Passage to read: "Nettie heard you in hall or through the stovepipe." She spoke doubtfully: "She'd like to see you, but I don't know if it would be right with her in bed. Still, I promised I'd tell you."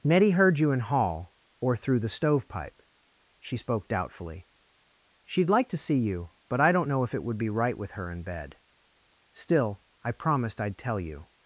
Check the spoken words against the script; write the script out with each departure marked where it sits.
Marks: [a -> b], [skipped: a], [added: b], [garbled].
"Nettie heard you in hall or through the stovepipe." She spoke doubtfully: "She'd like to see you, but I don't know if it would be right with her in bed. Still, I promised I'd tell you."